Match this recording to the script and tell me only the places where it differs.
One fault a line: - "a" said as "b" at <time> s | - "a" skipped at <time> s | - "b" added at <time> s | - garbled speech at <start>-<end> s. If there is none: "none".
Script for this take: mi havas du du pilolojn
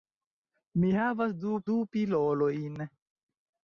none